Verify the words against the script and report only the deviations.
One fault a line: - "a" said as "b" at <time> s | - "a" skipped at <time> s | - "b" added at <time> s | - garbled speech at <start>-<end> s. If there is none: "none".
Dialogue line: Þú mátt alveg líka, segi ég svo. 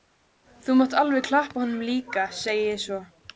- "klappa honum" added at 1.3 s